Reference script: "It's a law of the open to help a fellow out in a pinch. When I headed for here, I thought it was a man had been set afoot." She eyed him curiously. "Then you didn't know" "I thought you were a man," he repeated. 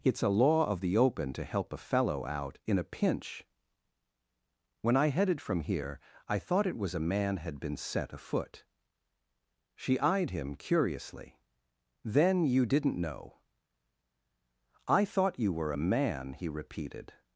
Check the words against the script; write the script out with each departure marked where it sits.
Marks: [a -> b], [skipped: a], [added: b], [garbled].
"It's a law of the open to help a fellow out in a pinch. When I headed [for -> from] here, I thought it was a man had been set afoot." She eyed him curiously. "Then you didn't know" "I thought you were a man," he repeated.